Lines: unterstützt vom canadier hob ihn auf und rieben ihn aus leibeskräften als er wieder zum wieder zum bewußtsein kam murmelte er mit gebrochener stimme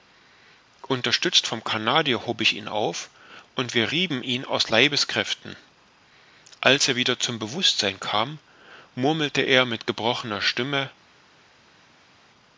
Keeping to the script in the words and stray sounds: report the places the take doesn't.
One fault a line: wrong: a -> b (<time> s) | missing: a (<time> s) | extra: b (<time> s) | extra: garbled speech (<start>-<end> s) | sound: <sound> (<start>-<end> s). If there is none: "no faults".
extra: ich (2.4 s)
extra: wir (3.8 s)
missing: wieder zum (7.4 s)